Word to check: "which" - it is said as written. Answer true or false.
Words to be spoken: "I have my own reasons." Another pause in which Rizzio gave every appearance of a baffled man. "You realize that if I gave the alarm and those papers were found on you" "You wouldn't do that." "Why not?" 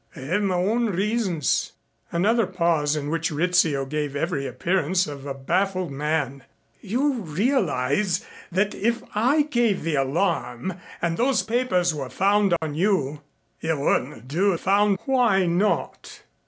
true